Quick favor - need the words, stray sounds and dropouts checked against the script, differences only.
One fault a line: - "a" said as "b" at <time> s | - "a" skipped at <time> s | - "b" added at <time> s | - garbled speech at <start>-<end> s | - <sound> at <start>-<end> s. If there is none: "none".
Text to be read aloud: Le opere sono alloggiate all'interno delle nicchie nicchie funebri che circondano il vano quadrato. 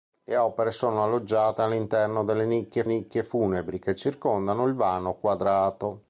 none